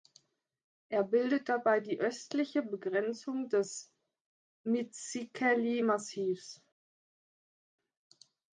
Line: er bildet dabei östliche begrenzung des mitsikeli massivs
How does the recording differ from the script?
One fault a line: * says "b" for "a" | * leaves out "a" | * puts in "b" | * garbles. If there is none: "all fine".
* puts in "die"